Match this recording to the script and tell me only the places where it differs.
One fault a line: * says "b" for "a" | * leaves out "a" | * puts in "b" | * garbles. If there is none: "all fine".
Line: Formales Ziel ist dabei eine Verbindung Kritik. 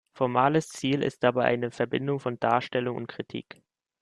* puts in "von Darstellung und"